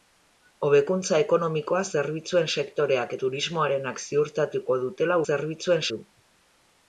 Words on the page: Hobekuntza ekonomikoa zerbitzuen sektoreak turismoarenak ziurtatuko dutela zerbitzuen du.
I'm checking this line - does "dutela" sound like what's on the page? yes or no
yes